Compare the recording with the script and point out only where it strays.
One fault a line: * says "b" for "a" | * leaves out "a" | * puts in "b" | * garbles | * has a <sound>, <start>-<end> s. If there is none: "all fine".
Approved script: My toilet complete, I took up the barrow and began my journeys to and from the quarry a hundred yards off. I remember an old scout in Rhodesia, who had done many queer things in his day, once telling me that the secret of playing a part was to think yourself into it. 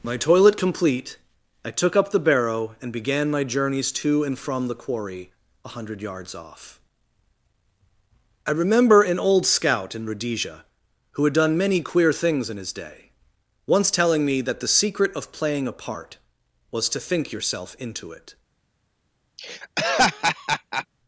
* has a laugh, 19.4-20.9 s